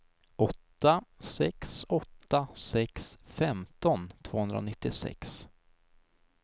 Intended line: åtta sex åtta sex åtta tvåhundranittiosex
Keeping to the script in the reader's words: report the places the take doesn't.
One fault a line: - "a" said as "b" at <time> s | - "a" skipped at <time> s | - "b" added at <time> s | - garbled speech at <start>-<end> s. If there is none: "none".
- "åtta" said as "femton" at 3.2 s